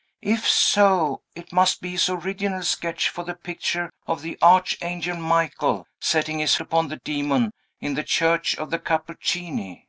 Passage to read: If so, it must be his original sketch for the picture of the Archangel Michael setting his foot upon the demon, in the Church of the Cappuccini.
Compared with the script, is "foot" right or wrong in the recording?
wrong